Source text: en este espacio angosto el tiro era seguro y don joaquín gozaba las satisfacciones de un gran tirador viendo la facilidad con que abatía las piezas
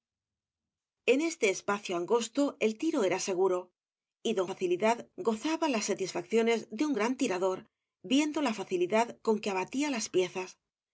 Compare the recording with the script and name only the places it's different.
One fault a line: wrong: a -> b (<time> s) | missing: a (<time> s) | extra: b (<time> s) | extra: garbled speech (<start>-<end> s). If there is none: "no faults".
wrong: joaquín -> facilidad (4.4 s)